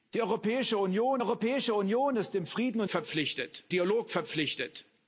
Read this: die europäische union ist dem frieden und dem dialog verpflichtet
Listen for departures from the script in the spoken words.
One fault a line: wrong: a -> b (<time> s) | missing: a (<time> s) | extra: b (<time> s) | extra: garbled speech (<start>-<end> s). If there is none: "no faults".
extra: europäische union (1.2 s)
wrong: dem -> verpflichtet (2.9 s)